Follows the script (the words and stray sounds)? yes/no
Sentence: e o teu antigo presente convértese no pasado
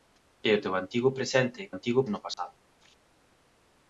no